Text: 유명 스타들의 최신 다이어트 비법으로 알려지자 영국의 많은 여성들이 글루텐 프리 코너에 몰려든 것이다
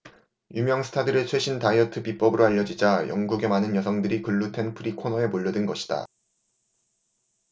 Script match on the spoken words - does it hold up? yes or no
yes